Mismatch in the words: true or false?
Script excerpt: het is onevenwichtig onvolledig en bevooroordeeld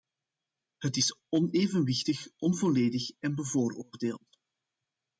false